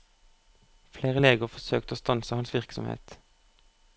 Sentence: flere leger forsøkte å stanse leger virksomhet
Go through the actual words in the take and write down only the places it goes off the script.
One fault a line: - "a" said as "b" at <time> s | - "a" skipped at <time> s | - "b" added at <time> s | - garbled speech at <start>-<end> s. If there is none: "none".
- "leger" said as "hans" at 2.4 s